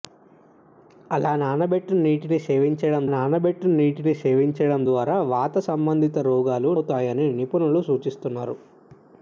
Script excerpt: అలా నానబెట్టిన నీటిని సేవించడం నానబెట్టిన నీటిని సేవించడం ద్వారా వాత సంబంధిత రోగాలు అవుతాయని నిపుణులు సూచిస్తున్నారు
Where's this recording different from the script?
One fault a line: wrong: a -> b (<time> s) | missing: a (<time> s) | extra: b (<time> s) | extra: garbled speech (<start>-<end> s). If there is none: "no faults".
no faults